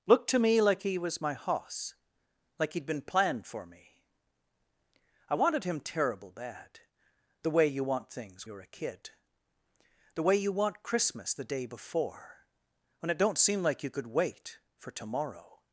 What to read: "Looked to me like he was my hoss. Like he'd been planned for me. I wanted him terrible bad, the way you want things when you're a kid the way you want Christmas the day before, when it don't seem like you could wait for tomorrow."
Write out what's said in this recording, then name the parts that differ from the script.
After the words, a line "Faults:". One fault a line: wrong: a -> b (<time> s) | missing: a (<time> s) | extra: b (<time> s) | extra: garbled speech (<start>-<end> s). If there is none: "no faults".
"Looked to me like he was my hoss. Like he'd been planned for me. I wanted him terrible bad, the way you want things you're a kid the way you want Christmas the day before, when it don't seem like you could wait for tomorrow."
Faults:
missing: when (8.5 s)